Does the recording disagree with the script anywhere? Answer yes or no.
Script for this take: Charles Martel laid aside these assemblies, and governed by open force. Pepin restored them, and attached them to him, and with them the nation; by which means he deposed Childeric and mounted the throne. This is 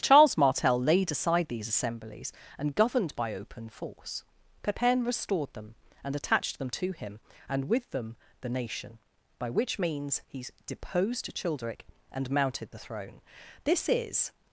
no